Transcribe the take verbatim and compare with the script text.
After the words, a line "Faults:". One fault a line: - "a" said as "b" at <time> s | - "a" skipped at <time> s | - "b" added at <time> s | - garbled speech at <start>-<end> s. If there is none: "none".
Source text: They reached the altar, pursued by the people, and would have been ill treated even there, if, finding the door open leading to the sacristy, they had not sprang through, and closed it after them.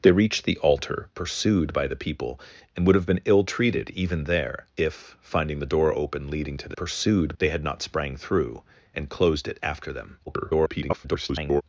They reached the altar, pursued by the people, and would have been ill treated even there, if, finding the door open leading to the pursued, they had not sprang through, and closed it after them. [garbled]
Faults:
- "sacristy" said as "pursued" at 6.8 s
- garbled speech at 10.3-11.6 s